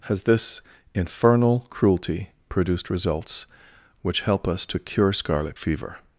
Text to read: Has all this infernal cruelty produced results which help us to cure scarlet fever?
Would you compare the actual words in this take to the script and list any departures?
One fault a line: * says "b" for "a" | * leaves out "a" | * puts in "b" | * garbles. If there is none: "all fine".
* leaves out "all"